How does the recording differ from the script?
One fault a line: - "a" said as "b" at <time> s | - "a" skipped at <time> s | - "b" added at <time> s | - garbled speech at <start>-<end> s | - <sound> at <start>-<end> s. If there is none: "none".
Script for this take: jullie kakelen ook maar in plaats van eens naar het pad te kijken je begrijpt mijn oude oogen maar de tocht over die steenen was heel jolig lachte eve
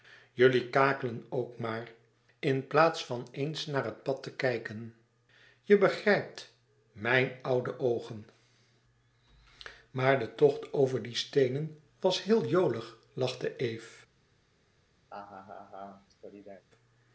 - laugh at 15.1-16.7 s